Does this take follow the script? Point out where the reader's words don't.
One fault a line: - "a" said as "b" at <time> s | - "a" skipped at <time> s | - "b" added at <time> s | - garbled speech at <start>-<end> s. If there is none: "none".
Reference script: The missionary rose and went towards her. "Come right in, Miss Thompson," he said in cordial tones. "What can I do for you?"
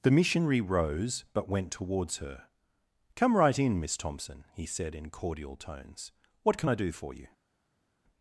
- "and" said as "but" at 1.3 s